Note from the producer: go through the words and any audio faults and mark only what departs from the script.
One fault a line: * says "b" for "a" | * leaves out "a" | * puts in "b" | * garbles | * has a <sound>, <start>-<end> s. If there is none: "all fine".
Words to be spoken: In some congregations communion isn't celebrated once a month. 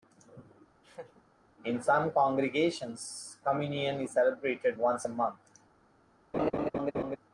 * has a laugh, 0.8-1.2 s
* says "is" for "isn't"
* has a laugh, 6.3-7.2 s